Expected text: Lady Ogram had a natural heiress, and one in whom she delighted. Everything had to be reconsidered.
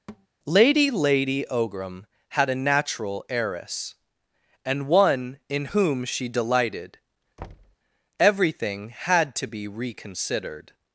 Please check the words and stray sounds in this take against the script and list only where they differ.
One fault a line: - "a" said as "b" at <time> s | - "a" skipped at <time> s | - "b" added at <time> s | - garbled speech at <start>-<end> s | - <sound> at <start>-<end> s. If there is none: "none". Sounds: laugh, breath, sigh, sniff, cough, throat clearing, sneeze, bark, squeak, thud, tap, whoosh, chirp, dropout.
- thud at 0.1-0.3 s
- "lady" added at 0.9 s
- thud at 7.4-7.8 s